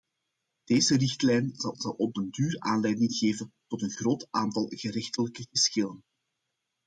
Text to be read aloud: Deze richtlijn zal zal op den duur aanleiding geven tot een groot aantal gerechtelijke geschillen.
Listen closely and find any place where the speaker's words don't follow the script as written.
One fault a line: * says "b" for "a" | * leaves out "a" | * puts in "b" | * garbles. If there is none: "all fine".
all fine